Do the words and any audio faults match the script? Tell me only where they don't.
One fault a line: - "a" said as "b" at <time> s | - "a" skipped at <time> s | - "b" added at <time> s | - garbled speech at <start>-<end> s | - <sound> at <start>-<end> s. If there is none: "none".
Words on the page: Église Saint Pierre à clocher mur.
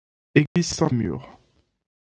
- dropout at 0.5-0.6 s
- "Pierre à clocher" skipped at 0.9 s